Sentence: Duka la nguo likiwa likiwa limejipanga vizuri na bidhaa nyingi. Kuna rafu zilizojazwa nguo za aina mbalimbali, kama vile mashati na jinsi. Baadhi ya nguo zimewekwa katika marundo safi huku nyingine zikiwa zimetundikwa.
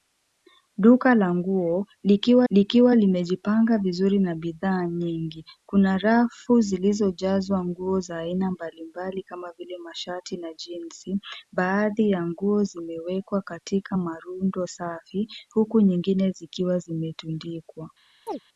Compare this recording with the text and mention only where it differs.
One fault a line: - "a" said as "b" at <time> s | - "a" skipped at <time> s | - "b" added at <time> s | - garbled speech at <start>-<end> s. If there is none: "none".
none